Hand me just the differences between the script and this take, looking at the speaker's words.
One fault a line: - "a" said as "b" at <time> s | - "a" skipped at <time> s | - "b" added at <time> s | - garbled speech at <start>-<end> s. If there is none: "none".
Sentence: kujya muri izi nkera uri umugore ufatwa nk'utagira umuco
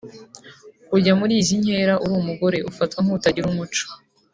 none